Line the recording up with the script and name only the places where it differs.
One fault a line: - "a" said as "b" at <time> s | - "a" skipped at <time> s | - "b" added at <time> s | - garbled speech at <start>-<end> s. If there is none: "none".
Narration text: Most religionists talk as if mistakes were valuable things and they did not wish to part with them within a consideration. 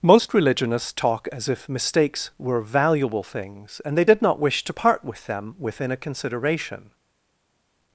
none